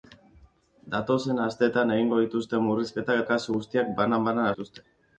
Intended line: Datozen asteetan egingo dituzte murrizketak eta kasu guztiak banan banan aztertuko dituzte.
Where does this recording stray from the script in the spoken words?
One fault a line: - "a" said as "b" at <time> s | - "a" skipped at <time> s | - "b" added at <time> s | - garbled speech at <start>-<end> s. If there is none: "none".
- "eta" skipped at 3.2 s
- "aztertuko" skipped at 4.5 s